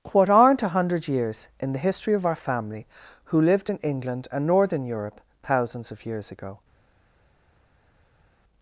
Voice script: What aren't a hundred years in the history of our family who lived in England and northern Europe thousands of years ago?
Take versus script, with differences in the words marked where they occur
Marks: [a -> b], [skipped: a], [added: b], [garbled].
What aren't a hundred years in the history of our family who lived in England and northern Europe thousands of years ago?